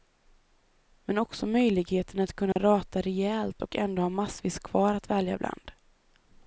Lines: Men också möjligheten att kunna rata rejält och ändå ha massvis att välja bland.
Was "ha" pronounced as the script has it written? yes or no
yes